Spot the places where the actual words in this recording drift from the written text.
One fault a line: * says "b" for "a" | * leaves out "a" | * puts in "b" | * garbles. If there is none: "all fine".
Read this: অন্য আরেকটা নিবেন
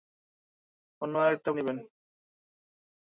all fine